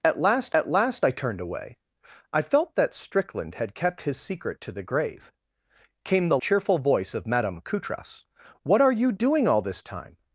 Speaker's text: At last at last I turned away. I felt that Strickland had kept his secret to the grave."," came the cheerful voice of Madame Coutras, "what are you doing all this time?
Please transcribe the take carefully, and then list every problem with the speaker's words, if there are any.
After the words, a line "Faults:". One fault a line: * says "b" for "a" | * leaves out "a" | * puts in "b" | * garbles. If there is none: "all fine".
At last at last I turned away. I felt that Strickland had kept his secret to the grave."," came the cheerful voice of Madame Coutras, "what are you doing all this time?
Faults:
all fine